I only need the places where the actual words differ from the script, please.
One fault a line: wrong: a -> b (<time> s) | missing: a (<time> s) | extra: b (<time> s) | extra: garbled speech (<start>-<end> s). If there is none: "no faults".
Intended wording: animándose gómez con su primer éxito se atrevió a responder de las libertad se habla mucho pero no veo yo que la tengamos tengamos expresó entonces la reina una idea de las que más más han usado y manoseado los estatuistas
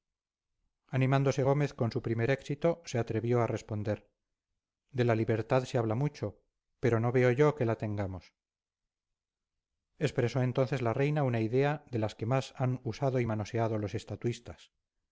wrong: las -> la (5.1 s)
missing: tengamos (8.4 s)
missing: más (12.5 s)